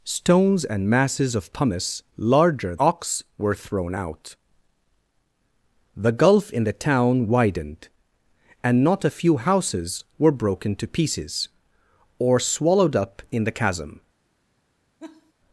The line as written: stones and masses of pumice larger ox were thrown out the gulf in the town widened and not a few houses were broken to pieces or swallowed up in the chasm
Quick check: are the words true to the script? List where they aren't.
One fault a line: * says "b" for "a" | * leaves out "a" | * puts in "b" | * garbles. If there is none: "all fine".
all fine